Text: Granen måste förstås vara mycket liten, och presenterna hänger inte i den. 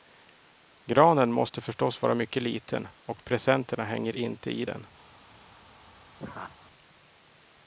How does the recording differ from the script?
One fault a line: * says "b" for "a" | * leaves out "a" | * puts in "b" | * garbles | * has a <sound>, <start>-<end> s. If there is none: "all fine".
* has a laugh, 6.2-6.6 s